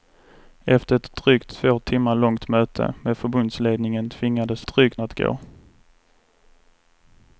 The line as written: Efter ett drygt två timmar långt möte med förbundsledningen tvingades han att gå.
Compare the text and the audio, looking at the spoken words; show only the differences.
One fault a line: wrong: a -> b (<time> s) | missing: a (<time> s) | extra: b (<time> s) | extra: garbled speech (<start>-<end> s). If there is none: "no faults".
wrong: han -> drygt (4.7 s)